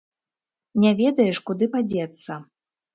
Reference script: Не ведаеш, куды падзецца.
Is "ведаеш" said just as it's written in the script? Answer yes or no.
yes